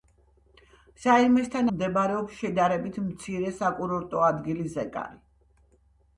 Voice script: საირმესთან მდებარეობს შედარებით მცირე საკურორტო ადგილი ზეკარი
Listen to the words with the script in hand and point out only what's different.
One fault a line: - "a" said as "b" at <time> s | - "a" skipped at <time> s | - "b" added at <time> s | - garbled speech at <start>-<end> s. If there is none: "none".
none